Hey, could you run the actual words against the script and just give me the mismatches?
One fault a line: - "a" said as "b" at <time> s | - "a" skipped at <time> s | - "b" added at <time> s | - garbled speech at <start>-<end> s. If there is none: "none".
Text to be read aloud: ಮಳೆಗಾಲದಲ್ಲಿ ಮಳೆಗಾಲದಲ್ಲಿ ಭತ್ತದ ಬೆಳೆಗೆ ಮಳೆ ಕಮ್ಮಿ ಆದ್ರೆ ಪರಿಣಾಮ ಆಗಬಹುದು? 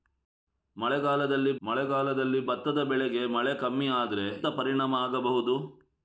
none